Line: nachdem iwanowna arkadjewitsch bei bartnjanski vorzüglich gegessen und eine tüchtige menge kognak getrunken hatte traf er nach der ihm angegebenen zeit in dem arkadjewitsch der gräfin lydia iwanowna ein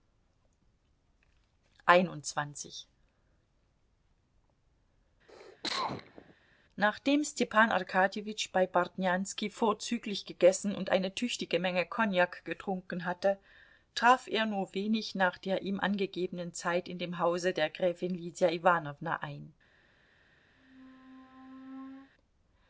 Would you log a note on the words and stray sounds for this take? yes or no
yes